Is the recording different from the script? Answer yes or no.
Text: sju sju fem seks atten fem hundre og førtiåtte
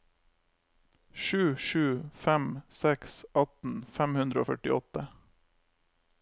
no